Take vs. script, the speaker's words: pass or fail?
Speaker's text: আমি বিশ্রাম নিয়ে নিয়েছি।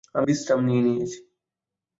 pass